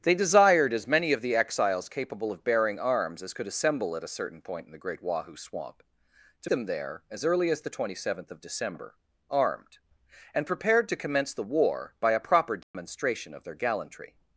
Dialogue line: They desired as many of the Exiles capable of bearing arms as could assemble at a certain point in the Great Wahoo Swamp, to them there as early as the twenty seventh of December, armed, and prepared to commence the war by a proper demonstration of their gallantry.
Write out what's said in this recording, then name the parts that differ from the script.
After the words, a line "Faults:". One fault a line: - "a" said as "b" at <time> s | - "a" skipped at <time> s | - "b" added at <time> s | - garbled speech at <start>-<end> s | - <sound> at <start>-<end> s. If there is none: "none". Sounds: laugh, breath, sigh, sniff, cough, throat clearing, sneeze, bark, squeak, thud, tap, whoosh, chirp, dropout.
They desired as many of the Exiles capable of bearing arms as could assemble at a certain point in the Great Wahoo Swamp, to them there as early as the twenty seventh of December, armed, and prepared to commence the war by a proper demonstration of their gallantry.
Faults:
- dropout at 12.6-12.7 s